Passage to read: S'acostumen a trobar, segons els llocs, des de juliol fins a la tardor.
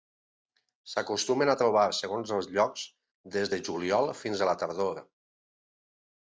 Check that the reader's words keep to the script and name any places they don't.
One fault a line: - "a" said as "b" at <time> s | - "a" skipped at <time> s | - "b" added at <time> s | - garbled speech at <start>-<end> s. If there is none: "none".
none